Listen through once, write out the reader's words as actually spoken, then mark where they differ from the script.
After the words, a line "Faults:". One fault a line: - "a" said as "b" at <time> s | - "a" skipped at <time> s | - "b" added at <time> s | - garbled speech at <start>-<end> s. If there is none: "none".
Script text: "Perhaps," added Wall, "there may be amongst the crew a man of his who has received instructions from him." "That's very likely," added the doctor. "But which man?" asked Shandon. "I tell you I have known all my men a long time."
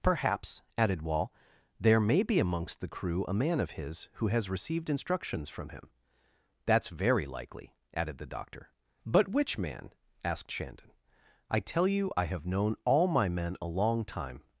"Perhaps," added Wall, "there may be amongst the crew a man of his who has received instructions from him." "That's very likely," added the doctor. "But which man?" asked Shandon. "I tell you I have known all my men a long time."
Faults:
none